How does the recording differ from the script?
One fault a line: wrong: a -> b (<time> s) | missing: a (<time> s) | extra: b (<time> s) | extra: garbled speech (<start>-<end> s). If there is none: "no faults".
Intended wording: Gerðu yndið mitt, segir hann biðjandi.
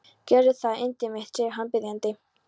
extra: það (0.6 s)